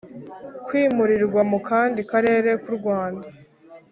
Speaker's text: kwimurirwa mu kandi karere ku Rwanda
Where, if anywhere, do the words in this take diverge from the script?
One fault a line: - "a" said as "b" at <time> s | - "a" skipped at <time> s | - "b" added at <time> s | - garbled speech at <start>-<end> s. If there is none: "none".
none